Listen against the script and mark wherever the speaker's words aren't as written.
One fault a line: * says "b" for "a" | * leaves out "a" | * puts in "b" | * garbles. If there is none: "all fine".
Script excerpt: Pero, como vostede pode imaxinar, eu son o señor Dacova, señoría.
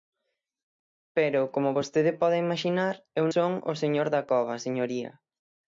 all fine